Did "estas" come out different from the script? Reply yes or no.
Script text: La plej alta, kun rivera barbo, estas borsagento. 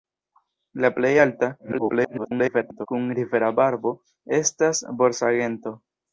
no